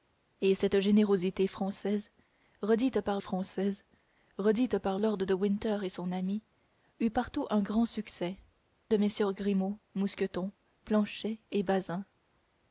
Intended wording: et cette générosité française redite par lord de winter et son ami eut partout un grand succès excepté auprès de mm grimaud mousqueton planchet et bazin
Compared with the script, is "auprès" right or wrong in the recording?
wrong